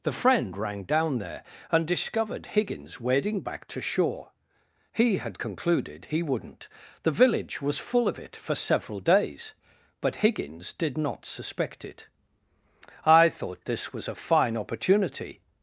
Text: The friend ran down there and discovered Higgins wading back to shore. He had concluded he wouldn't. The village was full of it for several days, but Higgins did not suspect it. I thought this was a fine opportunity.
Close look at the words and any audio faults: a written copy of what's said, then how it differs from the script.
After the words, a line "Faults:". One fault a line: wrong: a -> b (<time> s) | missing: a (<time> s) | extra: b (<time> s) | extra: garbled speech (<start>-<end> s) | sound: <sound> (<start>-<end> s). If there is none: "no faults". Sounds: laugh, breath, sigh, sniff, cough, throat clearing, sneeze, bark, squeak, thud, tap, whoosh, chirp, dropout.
The friend rang down there and discovered Higgins wading back to shore. He had concluded he wouldn't. The village was full of it for several days, but Higgins did not suspect it. I thought this was a fine opportunity.
Faults:
wrong: ran -> rang (0.6 s)